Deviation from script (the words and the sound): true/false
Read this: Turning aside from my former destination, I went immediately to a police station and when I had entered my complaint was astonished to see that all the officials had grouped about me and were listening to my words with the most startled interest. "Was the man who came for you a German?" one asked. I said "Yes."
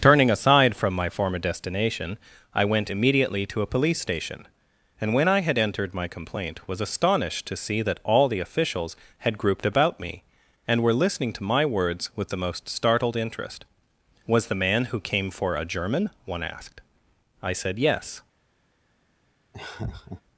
true